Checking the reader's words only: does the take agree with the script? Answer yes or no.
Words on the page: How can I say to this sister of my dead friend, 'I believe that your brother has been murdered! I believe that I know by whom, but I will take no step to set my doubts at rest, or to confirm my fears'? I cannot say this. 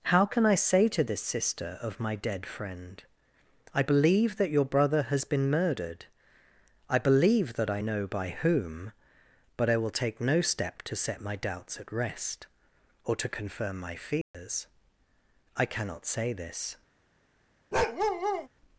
yes